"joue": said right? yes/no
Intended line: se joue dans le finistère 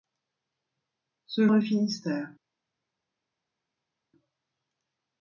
no